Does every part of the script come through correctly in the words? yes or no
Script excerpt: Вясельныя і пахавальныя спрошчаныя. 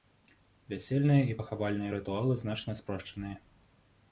no